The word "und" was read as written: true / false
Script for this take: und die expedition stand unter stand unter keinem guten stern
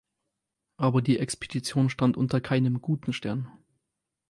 false